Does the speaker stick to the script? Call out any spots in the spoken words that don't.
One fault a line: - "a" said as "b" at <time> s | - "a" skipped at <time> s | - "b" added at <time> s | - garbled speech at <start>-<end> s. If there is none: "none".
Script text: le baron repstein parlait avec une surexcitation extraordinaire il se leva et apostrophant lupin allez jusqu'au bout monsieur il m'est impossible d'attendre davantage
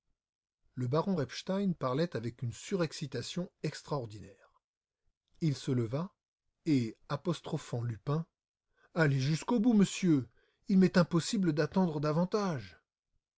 none